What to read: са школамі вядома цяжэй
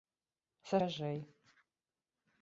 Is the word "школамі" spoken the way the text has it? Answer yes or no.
no